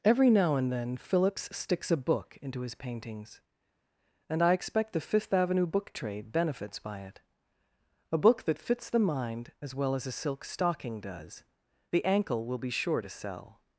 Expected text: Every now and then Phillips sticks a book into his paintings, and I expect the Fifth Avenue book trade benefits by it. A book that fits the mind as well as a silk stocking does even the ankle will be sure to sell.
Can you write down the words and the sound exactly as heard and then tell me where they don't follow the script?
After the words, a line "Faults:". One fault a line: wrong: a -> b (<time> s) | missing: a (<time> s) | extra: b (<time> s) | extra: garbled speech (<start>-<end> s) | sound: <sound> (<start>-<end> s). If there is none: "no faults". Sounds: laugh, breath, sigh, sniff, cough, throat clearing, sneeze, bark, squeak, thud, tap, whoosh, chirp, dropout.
Every now and then Phillips sticks a book into his paintings, and I expect the Fifth Avenue book trade benefits by it. A book that fits the mind as well as a silk stocking does the ankle will be sure to sell.
Faults:
missing: even (11.4 s)